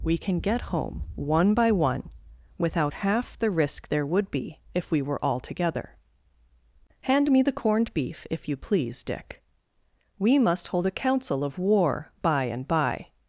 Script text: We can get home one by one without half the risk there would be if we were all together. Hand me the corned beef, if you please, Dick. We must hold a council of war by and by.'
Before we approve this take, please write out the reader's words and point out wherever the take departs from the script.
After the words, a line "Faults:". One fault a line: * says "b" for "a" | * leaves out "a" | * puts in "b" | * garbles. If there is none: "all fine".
We can get home one by one without half the risk there would be if we were all together. Hand me the corned beef, if you please, Dick. We must hold a council of war by and by.'
Faults:
all fine